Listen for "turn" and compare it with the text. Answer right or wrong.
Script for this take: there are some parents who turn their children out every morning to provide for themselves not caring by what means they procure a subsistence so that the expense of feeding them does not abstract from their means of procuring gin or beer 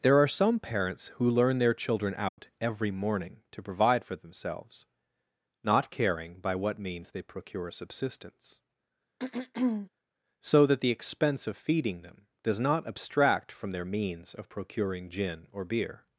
wrong